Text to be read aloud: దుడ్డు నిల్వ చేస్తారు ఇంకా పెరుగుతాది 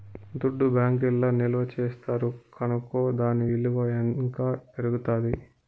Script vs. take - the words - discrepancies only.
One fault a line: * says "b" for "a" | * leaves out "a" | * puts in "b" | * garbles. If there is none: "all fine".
* puts in "బ్యాంకీల్ల"
* puts in "కనుకో దాని ఇలువ"